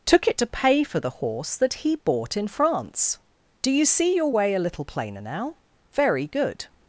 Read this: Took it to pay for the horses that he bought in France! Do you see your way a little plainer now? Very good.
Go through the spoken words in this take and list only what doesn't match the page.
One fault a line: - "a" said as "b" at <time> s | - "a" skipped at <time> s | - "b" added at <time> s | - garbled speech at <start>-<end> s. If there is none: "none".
- "horses" said as "horse" at 1.1 s